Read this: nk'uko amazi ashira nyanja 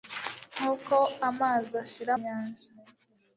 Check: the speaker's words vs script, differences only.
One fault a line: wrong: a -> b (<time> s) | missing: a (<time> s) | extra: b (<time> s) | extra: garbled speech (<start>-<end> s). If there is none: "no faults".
no faults